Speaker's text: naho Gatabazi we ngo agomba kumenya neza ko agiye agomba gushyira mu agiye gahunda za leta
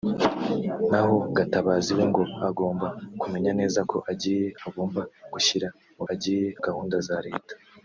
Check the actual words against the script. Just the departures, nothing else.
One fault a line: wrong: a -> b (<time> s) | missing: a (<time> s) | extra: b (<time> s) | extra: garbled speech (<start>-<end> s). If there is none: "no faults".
no faults